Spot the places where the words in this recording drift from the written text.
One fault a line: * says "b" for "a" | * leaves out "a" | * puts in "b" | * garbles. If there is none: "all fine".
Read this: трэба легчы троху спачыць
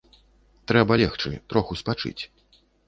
all fine